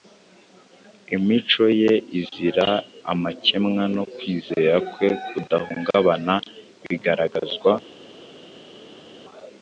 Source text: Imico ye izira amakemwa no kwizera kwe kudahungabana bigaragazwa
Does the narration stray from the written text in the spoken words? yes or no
no